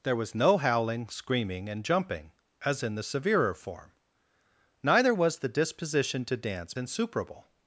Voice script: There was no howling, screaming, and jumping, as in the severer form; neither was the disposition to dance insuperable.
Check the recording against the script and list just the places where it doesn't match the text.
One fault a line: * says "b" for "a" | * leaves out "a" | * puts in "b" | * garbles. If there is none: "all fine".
all fine